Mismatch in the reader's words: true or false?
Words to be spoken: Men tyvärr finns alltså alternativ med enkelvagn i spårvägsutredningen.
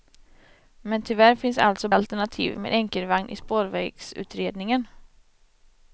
false